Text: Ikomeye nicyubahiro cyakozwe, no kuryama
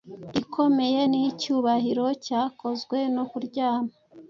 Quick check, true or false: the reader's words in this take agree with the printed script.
true